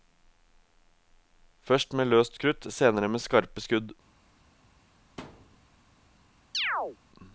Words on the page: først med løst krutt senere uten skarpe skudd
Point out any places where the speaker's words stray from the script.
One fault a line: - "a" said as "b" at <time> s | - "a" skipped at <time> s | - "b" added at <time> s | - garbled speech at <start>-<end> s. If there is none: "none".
- "uten" said as "med" at 3.1 s